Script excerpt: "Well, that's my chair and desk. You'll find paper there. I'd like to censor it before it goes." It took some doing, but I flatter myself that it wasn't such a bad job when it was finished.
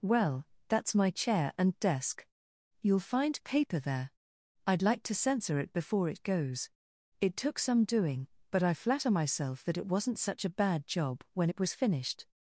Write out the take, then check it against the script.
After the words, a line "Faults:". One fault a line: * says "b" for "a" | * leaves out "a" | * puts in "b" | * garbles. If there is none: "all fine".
"Well, that's my chair and desk. You'll find paper there. I'd like to censor it before it goes." It took some doing, but I flatter myself that it wasn't such a bad job when it was finished.
Faults:
all fine